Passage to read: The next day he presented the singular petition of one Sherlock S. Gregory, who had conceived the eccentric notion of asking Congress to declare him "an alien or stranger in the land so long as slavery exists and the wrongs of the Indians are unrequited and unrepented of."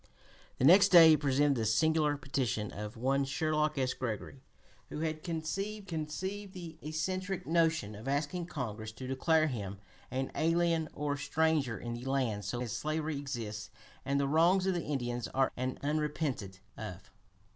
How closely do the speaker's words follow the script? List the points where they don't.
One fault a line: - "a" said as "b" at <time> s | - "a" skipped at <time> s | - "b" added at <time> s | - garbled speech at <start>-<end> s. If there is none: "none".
- "conceived" added at 5.8 s
- "long" skipped at 12.6 s
- "unrequited" skipped at 15.5 s